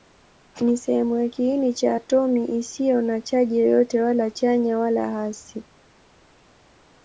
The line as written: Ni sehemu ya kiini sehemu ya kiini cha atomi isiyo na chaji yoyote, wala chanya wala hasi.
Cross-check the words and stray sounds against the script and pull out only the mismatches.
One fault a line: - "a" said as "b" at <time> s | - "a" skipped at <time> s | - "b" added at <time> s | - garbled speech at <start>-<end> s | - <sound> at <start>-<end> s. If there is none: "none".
- "sehemu ya kiini" skipped at 1.7 s